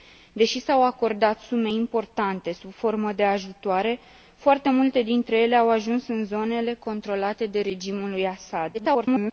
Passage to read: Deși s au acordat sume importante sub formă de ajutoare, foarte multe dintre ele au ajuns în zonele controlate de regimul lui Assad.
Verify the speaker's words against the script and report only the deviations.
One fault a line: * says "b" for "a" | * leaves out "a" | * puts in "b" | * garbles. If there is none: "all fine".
* garbles